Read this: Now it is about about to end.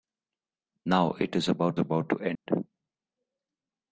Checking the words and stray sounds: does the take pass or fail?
fail